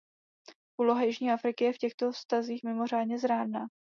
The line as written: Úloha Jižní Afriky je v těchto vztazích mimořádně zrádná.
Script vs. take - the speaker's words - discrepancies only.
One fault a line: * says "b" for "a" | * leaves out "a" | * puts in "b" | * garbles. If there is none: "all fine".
all fine